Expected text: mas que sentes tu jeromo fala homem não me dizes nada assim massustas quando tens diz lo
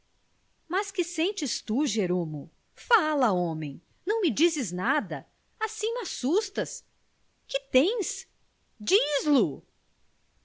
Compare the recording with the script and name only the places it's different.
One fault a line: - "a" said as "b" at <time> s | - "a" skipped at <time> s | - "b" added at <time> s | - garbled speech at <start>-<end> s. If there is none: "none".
- "quando" said as "que" at 7.5 s